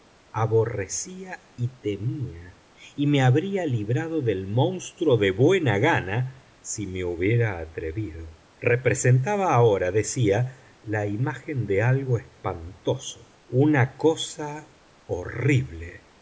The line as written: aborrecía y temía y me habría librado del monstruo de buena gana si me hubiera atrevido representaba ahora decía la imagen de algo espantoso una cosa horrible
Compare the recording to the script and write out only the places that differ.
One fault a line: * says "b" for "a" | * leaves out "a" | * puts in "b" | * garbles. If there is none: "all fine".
all fine